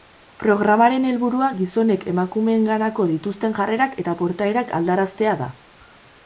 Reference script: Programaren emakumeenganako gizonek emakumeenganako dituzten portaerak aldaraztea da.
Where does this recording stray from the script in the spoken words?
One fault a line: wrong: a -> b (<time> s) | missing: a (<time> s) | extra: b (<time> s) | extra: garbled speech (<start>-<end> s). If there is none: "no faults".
wrong: emakumeenganako -> helburua (1.1 s)
extra: jarrerak eta (3.6 s)